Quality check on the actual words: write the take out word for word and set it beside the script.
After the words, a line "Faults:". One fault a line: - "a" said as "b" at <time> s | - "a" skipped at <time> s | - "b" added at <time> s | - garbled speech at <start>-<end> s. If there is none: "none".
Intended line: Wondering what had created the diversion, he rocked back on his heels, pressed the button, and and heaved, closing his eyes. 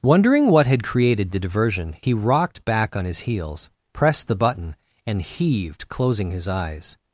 Wondering what had created the diversion, he rocked back on his heels, pressed the button, and heaved, closing his eyes.
Faults:
- "and" skipped at 5.2 s